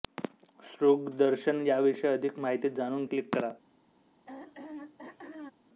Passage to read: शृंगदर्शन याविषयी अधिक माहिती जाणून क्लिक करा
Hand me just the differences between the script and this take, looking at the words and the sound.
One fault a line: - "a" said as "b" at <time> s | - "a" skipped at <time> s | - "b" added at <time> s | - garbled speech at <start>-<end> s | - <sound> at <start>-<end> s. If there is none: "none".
- throat clearing at 4.3-5.5 s